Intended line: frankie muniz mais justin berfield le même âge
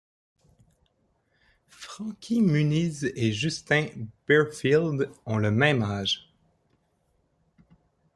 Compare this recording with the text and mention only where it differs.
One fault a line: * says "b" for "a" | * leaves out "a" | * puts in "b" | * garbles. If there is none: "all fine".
* says "et" for "mais"
* puts in "ont"